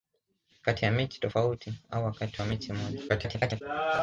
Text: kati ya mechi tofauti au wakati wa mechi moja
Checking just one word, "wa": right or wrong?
right